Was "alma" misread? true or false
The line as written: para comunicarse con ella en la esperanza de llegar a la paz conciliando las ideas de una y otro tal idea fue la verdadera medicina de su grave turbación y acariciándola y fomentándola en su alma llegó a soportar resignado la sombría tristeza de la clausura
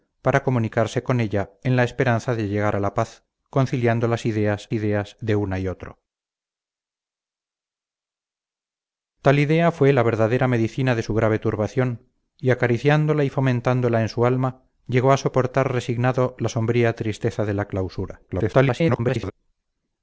false